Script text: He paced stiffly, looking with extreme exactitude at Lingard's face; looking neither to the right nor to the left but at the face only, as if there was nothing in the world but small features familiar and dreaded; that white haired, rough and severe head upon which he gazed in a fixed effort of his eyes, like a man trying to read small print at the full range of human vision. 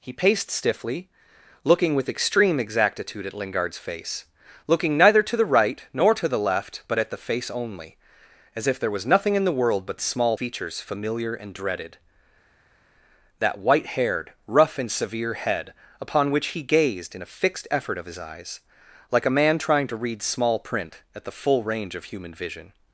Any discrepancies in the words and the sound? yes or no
no